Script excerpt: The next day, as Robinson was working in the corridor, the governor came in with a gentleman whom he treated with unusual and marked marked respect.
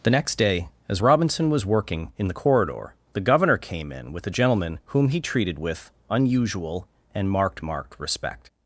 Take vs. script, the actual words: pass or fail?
pass